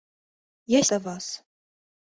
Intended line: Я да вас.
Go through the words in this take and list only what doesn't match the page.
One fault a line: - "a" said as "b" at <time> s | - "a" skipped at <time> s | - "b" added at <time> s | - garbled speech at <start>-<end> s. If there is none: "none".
none